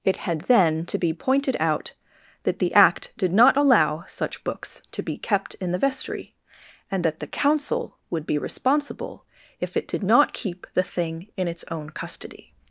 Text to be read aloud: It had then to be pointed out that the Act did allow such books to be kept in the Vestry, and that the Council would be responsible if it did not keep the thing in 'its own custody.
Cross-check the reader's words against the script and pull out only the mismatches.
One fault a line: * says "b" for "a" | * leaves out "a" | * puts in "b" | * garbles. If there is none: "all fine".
* puts in "not"